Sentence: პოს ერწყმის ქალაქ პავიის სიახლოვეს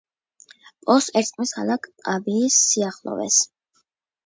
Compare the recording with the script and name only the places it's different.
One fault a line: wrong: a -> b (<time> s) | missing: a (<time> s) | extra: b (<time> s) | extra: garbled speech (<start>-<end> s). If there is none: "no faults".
no faults